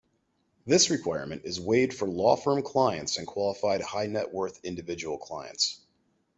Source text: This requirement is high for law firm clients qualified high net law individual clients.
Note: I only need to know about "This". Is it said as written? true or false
true